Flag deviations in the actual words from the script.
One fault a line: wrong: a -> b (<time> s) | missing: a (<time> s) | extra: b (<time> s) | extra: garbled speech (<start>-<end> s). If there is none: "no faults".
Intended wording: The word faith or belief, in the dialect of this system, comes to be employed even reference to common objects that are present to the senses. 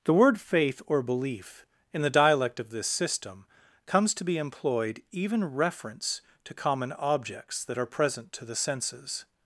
no faults